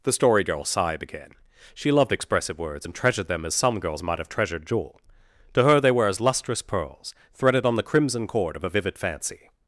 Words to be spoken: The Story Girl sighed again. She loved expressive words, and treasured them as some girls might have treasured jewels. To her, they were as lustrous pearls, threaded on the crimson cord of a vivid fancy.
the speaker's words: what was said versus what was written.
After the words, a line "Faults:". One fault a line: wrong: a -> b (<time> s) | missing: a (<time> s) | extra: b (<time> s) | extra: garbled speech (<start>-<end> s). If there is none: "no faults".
The Story Girl sighed again. She loved expressive words, and treasured them as some girls might have treasured jewel. To her, they were as lustrous pearls, threaded on the crimson cord of a vivid fancy.
Faults:
wrong: jewels -> jewel (4.6 s)